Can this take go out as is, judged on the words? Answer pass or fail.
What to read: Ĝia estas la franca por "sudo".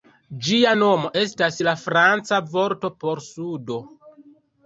fail